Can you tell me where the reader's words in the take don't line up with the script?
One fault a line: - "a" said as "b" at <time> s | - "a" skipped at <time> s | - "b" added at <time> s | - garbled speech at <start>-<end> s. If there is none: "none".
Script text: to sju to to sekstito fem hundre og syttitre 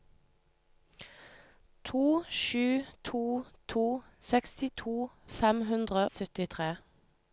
- "og" skipped at 6.1 s